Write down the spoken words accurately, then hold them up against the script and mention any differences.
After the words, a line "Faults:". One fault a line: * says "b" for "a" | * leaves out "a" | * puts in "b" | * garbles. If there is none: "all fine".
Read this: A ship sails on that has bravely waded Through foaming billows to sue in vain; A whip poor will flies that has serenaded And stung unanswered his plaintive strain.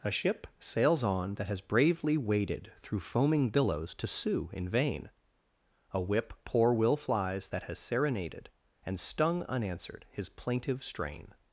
A ship sails on that has bravely waded Through foaming billows to sue in vain; A whip poor will flies that has serenaded And stung unanswered his plaintive strain.
Faults:
all fine